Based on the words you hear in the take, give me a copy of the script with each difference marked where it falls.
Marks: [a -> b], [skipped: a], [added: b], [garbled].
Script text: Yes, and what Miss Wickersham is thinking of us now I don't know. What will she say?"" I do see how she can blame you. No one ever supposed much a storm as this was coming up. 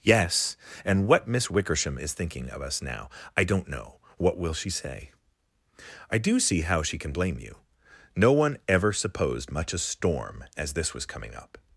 Yes, and what Miss Wickersham is thinking of us now I don't know. What will she say?"" I do see how she can blame you. No one ever supposed much a storm as this was coming up.